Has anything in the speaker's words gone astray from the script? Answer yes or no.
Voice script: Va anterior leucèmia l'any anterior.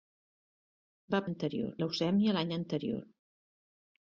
no